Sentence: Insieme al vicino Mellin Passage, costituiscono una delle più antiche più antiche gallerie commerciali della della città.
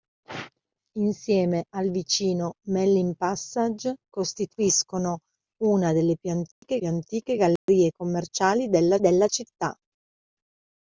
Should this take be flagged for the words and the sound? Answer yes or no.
yes